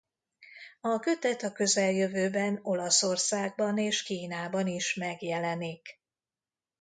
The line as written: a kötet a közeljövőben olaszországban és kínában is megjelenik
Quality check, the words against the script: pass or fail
pass